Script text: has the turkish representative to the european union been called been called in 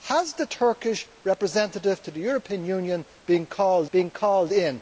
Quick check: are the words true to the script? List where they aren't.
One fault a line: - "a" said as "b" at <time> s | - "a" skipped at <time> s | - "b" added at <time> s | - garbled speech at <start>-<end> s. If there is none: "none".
none